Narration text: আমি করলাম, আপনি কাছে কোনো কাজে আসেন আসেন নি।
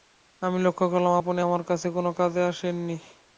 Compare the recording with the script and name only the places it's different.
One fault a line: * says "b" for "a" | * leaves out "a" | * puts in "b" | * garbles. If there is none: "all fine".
* puts in "লক্ষ"
* puts in "আমার"
* leaves out "আসেন"